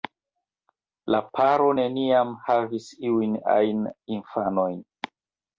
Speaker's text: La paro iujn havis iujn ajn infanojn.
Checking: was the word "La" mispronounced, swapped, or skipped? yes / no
no